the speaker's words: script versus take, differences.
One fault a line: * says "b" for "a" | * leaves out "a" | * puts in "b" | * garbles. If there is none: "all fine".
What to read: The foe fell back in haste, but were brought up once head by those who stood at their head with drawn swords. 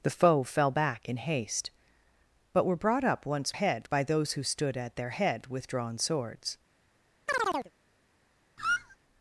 all fine